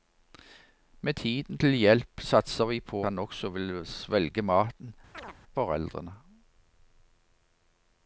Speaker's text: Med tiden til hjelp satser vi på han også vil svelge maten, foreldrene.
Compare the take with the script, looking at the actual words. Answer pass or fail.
pass